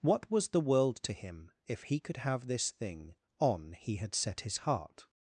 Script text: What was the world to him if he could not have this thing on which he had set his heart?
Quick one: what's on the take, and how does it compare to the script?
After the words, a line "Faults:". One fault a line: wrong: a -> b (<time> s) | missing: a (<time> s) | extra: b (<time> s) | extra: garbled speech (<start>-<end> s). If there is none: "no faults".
What was the world to him if he could have this thing on he had set his heart?
Faults:
missing: not (2.2 s)
missing: which (3.7 s)